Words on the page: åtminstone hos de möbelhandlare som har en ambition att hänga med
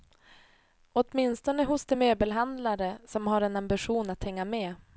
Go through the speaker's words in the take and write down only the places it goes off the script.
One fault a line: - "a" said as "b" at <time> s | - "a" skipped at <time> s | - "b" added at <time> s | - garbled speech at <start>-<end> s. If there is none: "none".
none